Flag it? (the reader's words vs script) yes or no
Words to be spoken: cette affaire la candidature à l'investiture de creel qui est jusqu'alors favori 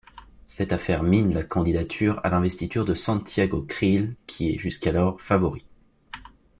yes